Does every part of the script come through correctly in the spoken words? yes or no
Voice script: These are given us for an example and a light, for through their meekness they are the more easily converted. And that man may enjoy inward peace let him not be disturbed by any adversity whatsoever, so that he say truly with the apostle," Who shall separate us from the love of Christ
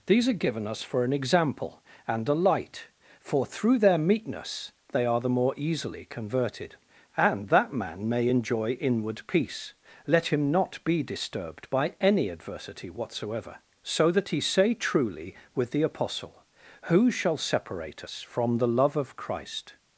yes